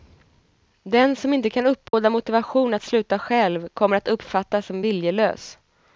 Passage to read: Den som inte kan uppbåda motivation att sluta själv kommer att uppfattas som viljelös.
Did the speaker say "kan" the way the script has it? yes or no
yes